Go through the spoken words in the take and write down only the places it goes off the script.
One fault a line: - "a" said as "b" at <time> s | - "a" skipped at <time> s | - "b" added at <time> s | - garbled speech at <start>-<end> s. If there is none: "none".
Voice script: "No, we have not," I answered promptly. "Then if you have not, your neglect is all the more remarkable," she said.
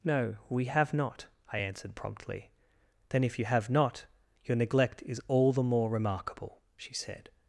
none